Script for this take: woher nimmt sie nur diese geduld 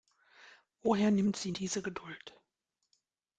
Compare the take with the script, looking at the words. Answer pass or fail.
fail